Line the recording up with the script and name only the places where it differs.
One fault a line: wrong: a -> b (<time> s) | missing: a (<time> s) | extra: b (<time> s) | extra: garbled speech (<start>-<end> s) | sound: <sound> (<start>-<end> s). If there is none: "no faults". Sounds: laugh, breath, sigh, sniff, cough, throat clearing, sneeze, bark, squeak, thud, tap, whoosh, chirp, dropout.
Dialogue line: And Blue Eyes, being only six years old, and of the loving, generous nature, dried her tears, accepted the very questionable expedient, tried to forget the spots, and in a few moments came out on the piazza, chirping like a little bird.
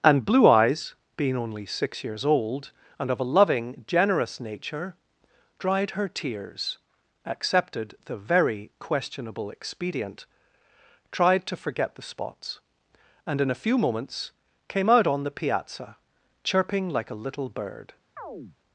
wrong: the -> a (3.2 s)
sound: chirp (18.2-18.6 s)